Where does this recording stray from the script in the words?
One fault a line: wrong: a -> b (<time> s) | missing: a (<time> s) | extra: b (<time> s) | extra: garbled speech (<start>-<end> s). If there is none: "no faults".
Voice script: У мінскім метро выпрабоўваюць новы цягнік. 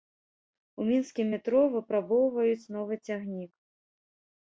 no faults